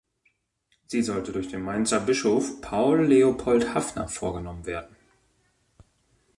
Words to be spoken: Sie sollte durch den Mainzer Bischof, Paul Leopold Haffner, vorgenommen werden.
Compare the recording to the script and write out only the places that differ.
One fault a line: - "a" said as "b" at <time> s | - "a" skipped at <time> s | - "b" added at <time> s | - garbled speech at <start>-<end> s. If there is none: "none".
none